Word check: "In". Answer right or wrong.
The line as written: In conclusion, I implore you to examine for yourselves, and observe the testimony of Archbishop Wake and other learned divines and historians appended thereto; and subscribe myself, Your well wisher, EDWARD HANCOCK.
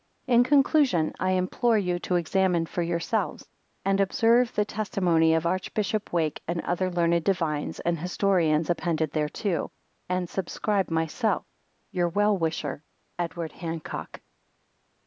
right